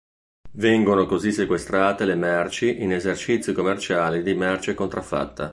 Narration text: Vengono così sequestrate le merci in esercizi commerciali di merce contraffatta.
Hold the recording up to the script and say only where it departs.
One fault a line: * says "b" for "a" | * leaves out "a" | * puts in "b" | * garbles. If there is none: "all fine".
all fine